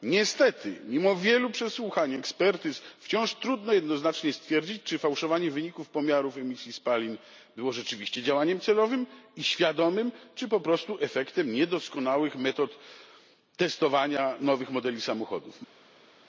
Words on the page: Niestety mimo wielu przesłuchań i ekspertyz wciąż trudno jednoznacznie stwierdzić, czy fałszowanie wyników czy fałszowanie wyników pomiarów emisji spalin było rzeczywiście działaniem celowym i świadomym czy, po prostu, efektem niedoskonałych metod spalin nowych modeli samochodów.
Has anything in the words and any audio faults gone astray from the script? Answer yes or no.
yes